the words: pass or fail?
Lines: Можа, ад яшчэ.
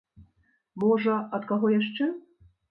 fail